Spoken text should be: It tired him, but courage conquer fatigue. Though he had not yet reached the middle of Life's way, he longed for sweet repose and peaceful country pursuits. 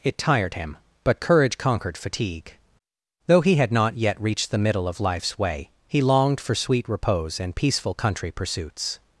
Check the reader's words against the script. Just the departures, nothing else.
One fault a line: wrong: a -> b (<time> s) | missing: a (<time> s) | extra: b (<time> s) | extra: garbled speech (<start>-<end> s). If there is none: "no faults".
wrong: conquer -> conquered (1.6 s)